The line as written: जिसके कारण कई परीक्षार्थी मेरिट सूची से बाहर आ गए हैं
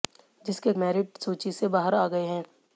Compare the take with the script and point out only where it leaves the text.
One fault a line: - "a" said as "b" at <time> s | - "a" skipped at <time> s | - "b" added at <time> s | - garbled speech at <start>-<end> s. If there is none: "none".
- "कारण कई परीक्षार्थी" skipped at 0.7 s